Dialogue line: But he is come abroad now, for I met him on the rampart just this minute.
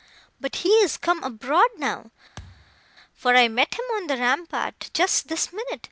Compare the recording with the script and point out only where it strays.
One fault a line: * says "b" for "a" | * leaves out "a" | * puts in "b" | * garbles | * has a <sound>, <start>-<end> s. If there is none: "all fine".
* has a thud, 2.4-2.8 s